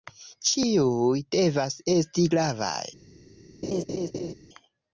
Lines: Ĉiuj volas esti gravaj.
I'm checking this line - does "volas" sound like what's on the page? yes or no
no